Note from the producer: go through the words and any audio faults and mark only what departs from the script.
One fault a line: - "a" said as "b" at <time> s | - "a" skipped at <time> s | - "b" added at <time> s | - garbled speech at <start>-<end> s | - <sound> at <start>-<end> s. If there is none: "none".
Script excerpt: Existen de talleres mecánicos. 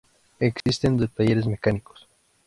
- dropout at 0.6-0.7 s